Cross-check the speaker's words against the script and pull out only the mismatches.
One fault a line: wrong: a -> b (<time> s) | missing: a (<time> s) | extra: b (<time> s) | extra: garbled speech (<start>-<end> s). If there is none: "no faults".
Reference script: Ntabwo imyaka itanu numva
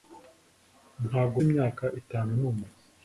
no faults